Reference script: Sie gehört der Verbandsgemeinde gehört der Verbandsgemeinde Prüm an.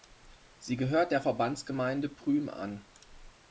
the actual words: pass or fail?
fail